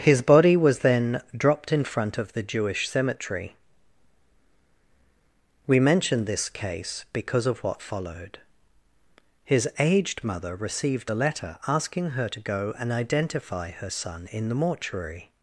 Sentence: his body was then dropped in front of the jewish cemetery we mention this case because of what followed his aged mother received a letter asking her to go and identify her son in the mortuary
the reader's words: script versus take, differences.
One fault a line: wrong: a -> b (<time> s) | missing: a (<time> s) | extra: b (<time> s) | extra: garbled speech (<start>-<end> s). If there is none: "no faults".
no faults